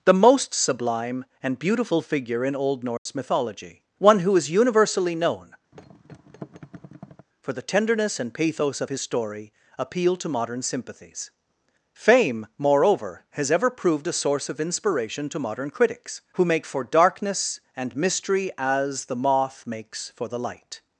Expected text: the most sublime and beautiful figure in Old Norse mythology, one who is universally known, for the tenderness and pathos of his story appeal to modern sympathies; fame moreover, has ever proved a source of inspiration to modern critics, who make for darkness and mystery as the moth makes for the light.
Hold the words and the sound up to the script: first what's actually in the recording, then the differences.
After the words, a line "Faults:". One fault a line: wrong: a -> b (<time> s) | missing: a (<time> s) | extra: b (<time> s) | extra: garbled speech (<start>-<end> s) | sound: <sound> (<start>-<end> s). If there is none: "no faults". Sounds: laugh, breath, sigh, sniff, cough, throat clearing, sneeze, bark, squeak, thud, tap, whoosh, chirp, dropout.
the most sublime and beautiful figure in Old Norse mythology, one who is universally known, for the tenderness and pathos of his story appeal to modern sympathies; fame moreover, has ever proved a source of inspiration to modern critics, who make for darkness and mystery as the moth makes for the light.
Faults:
sound: dropout (3.0-3.1 s)
sound: thud (5.7-7.3 s)